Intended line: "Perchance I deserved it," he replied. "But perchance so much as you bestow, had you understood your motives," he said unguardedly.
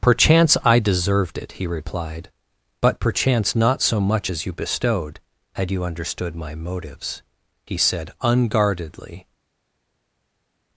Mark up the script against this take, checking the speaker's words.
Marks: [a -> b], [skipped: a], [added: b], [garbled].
"Perchance I deserved it," he replied. "But perchance [added: not] so much as you [bestow, -> bestowed] had you understood [your -> my] motives," he said unguardedly.